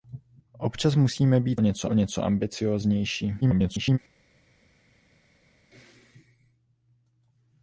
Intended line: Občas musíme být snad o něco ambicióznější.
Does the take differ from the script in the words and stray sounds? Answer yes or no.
yes